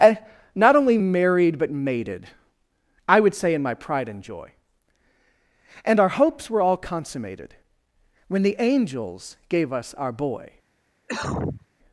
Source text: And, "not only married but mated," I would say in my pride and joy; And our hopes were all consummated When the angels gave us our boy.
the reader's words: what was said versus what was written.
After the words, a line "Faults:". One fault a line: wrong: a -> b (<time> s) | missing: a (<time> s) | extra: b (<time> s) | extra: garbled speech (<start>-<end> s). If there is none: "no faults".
And, "not only married but mated," I would say in my pride and joy; And our hopes were all consummated When the angels gave us our boy.
Faults:
no faults